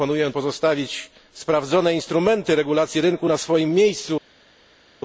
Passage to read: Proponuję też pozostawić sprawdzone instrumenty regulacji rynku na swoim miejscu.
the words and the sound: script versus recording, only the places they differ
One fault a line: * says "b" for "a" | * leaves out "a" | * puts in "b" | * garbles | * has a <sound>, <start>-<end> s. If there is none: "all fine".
* leaves out "też"